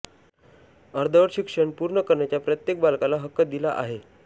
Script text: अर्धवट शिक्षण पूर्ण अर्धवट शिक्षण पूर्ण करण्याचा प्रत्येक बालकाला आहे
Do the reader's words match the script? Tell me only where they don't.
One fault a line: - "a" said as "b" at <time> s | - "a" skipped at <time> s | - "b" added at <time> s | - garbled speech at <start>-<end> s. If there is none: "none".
- "अर्धवट शिक्षण पूर्ण" skipped at 2.0 s
- "हक्क दिला" added at 3.2 s